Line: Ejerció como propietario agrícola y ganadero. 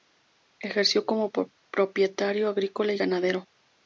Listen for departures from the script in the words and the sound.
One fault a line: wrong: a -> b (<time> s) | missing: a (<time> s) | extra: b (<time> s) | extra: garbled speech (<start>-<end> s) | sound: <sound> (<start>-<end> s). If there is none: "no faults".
no faults